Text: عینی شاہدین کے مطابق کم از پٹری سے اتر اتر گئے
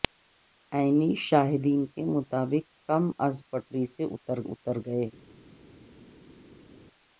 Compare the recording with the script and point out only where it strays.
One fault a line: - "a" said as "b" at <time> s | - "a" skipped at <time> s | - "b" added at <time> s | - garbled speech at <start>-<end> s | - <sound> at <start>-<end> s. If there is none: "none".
none